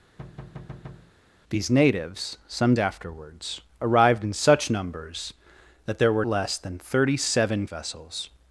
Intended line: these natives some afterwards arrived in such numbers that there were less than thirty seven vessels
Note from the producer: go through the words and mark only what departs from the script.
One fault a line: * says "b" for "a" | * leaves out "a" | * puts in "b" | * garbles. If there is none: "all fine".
all fine